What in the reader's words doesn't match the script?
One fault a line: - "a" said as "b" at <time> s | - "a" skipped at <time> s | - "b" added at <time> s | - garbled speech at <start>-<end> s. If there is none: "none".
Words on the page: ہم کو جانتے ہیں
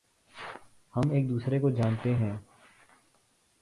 - "ایک دوسرے" added at 1.1 s